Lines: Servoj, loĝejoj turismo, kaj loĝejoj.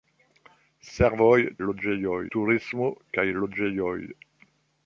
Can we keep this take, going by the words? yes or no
yes